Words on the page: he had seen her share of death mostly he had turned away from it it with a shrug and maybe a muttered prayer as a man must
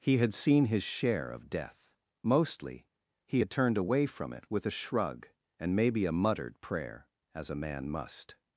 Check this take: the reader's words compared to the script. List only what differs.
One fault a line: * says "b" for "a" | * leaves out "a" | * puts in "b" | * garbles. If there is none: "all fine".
* says "his" for "her"
* leaves out "it"